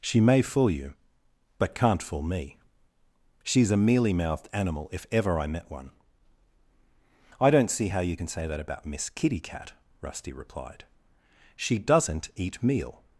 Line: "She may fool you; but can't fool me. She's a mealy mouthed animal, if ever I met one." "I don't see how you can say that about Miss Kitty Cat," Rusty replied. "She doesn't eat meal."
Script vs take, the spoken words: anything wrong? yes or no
no